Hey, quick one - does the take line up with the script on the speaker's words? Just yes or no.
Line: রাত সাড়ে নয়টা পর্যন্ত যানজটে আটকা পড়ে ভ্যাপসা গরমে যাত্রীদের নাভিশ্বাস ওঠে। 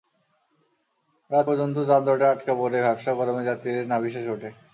no